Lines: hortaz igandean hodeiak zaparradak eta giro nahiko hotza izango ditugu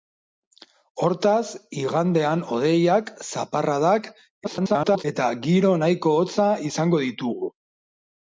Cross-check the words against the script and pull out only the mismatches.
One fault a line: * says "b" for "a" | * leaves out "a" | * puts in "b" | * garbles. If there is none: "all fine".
* garbles